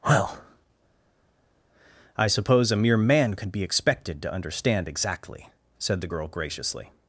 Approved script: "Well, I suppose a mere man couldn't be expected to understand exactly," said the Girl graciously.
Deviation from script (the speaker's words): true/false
true